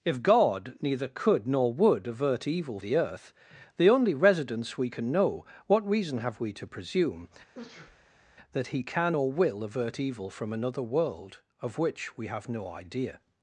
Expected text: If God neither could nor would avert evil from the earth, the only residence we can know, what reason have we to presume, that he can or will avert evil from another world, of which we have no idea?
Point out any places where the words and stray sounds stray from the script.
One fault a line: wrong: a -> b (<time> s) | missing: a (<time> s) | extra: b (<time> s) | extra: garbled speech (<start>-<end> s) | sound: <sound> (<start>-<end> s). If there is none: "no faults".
missing: from (2.8 s)
sound: sneeze (7.5-8.4 s)